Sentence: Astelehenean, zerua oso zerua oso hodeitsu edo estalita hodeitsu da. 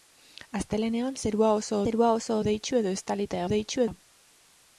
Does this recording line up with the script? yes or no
yes